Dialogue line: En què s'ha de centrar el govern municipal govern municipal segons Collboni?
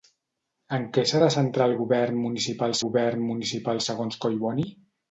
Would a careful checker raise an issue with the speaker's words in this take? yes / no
no